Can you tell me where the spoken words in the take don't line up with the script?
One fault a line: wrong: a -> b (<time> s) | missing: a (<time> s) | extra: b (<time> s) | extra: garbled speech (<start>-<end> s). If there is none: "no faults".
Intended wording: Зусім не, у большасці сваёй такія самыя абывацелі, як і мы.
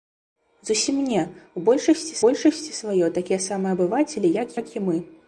extra: большасці (2.2 s)
extra: як (4.6 s)